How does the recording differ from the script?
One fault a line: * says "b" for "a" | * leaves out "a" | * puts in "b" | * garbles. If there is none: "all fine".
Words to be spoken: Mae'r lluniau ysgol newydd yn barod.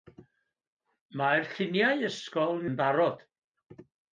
* leaves out "newydd"